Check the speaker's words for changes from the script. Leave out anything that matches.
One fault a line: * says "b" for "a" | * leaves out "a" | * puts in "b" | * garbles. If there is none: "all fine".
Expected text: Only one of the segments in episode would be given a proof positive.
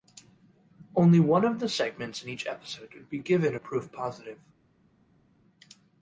* puts in "each"